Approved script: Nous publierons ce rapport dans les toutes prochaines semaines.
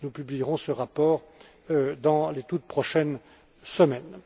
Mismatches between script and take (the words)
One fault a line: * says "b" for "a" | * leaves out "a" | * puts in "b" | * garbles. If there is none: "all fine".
all fine